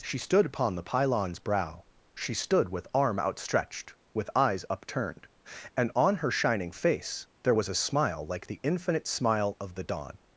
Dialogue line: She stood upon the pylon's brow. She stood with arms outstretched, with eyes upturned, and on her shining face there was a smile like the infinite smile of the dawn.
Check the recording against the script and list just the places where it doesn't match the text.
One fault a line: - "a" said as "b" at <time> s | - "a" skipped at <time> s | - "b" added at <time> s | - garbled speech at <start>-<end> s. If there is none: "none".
- "arms" said as "arm" at 2.9 s